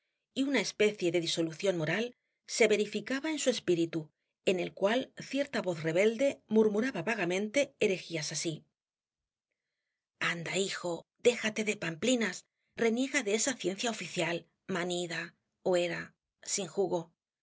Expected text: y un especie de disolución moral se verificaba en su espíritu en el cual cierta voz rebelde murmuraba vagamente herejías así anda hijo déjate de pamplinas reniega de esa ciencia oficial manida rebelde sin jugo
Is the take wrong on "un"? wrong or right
wrong